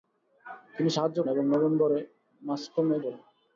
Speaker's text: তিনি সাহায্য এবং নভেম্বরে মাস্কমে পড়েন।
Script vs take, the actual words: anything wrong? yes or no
no